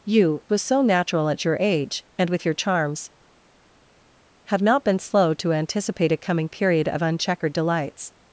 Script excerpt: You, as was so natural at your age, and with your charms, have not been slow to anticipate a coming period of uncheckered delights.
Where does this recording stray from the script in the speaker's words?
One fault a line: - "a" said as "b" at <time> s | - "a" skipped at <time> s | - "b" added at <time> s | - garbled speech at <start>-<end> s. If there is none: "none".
- "as" skipped at 0.4 s